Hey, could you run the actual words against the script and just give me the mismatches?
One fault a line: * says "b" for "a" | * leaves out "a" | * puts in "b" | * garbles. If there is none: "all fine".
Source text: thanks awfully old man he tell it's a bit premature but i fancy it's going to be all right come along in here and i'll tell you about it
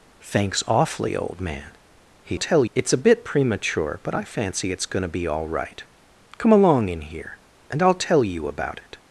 all fine